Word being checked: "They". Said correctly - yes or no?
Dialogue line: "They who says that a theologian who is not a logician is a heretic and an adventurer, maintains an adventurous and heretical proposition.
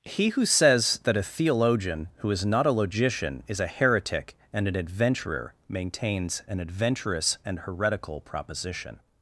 no